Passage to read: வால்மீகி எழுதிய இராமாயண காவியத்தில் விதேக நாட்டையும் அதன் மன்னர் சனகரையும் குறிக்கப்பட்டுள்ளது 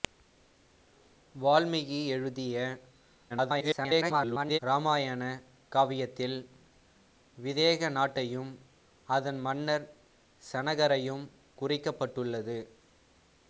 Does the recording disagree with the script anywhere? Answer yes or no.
yes